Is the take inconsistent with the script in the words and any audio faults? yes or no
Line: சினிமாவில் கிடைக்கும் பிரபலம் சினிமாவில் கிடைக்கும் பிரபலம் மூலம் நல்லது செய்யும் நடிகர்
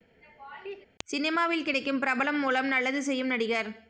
yes